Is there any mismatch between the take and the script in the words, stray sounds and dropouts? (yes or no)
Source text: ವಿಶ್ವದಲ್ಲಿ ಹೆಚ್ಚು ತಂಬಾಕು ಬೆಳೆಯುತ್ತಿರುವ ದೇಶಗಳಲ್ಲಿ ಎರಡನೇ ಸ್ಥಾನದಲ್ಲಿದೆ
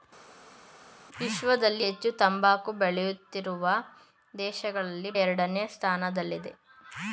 no